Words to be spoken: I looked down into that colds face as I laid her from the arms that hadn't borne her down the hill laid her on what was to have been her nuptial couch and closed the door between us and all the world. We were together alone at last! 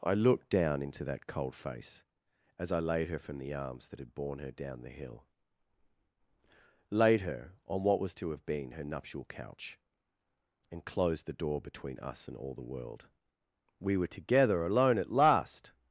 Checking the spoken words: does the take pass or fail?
fail